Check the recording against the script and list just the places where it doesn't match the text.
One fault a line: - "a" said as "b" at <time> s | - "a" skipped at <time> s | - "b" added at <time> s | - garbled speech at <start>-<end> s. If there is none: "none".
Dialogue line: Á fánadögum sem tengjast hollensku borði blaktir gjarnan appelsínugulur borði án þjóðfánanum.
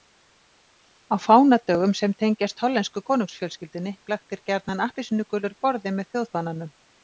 - "borði" said as "konungsfjölskyldunni" at 3.1 s
- "án" said as "með" at 6.0 s